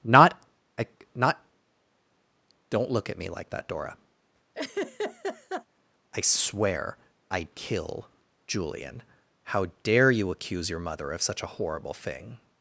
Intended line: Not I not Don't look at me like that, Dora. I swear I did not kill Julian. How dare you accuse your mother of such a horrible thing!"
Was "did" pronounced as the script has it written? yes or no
no